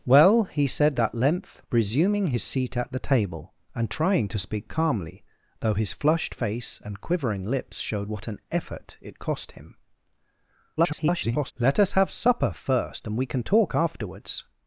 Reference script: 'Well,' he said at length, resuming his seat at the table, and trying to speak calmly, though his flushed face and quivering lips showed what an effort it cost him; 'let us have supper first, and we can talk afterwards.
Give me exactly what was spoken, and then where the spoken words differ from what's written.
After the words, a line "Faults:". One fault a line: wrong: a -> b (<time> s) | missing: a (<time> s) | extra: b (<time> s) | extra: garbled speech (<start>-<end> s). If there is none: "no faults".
'Well,' he said at length, resuming his seat at the table, and trying to speak calmly, though his flushed face and quivering lips showed what an effort it cost him; [garbled] 'let us have supper first, and we can talk afterwards.
Faults:
extra: garbled speech (10.8-11.5 s)